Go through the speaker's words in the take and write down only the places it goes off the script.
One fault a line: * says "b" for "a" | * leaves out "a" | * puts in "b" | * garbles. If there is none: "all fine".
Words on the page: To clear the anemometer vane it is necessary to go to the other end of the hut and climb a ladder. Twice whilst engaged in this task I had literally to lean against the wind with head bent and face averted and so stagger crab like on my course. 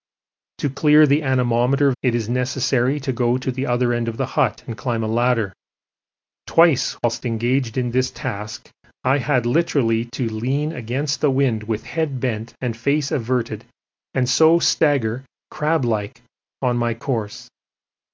* leaves out "vane"